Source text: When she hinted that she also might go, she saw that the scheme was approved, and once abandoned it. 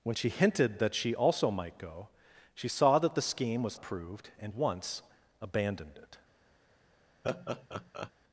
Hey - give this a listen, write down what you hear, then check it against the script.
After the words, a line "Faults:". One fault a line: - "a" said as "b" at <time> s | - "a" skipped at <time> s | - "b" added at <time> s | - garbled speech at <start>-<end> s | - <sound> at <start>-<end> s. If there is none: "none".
When she hinted that she also might go, she saw that the scheme was approved, and once abandoned it.
Faults:
- laugh at 7.2-8.1 s